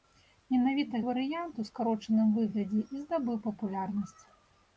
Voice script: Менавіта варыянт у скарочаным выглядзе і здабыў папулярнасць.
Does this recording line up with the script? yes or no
yes